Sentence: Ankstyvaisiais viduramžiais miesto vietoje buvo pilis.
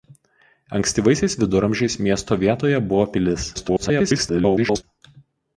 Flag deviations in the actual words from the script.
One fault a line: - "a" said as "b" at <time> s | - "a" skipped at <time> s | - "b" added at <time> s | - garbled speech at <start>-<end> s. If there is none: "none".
- garbled speech at 3.5-4.8 s